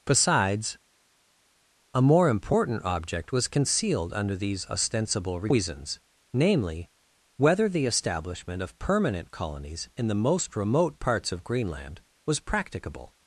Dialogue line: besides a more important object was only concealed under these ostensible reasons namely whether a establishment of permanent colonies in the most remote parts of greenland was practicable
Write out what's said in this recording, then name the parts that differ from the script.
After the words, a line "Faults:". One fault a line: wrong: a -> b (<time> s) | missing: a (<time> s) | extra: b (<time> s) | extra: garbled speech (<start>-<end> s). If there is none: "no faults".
besides a more important object was concealed under these ostensible reasons namely whether the establishment of permanent colonies in the most remote parts of greenland was practicable
Faults:
missing: only (3.5 s)
wrong: a -> the (7.7 s)